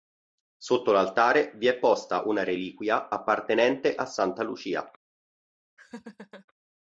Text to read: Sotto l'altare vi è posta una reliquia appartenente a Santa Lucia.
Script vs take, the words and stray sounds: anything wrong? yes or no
yes